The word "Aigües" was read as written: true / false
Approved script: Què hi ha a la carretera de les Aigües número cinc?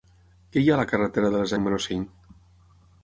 false